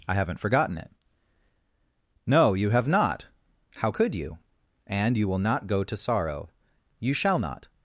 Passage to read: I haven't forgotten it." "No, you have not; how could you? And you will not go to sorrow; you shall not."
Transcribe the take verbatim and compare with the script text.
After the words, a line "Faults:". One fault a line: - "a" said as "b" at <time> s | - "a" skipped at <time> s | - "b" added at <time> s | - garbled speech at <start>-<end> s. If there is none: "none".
I haven't forgotten it." "No, you have not; how could you? And you will not go to sorrow; you shall not."
Faults:
none